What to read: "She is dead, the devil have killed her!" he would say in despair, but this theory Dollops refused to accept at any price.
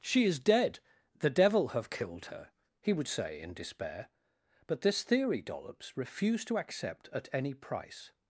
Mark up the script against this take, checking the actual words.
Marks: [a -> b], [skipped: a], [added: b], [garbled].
"She is dead, the devil have killed her!" he would say in despair, but this theory Dollops refused to accept at any price.